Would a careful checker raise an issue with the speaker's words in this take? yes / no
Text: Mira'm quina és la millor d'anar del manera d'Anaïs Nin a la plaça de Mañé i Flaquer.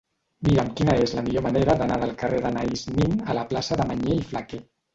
yes